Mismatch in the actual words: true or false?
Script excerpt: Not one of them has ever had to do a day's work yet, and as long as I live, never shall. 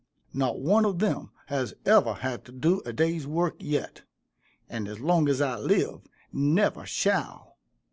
false